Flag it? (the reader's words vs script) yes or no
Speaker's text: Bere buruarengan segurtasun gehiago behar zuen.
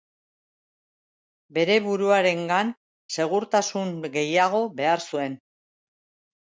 no